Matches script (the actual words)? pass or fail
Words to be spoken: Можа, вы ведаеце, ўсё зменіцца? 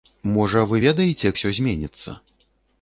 pass